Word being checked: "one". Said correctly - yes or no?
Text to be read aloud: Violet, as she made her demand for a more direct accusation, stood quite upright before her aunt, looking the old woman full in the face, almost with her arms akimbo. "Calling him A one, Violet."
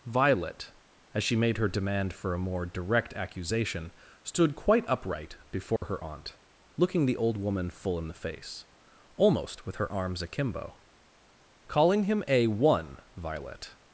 yes